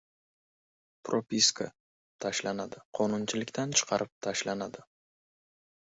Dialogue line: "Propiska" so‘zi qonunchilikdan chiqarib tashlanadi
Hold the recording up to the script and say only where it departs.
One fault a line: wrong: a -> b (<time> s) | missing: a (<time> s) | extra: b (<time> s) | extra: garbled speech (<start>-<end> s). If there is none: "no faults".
wrong: so‘zi -> tashlanadi (2.3 s)